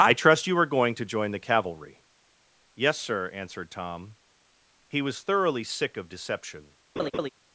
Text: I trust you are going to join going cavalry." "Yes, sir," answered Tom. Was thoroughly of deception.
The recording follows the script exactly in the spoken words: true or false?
false